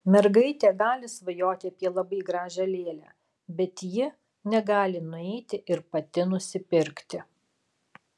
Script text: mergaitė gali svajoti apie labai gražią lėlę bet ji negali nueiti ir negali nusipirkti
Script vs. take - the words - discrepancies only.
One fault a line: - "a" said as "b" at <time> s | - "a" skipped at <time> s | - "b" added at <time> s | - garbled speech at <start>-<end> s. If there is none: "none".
- "negali" said as "pati" at 6.0 s